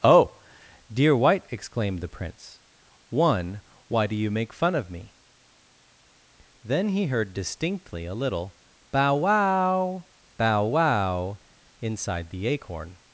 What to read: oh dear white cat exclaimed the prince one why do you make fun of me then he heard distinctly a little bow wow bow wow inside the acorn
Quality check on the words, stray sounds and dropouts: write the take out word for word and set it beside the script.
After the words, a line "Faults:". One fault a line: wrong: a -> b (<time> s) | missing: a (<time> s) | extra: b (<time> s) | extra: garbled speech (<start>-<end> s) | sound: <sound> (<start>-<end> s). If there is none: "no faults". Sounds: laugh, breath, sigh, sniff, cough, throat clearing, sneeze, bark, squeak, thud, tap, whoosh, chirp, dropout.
oh dear white exclaimed the prince one why do you make fun of me then he heard distinctly a little bow wow bow wow inside the acorn
Faults:
missing: cat (1.5 s)